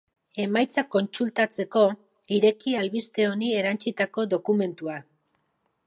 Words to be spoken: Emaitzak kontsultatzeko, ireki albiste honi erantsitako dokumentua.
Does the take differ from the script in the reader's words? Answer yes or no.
no